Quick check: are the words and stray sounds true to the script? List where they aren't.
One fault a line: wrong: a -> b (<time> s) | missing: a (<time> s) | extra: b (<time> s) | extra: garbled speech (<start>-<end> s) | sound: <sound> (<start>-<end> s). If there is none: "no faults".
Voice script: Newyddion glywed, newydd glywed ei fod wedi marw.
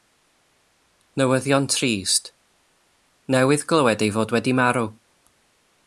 wrong: glywed -> trist (1.8 s)